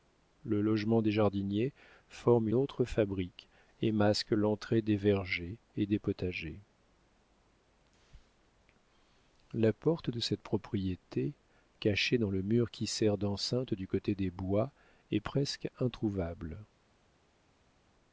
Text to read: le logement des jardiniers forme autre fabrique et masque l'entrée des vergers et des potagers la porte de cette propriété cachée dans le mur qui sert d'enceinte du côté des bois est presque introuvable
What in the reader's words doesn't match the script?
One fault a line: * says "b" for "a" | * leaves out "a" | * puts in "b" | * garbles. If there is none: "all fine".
all fine